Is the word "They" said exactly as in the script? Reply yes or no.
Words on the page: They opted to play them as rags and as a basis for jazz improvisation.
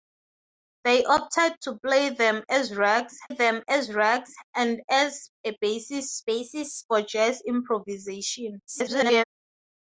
yes